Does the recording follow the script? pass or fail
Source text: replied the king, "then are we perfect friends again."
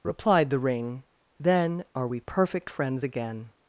fail